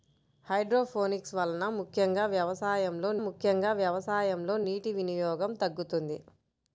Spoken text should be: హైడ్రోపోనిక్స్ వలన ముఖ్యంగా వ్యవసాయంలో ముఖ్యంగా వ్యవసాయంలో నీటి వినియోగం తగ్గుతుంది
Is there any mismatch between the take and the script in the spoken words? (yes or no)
no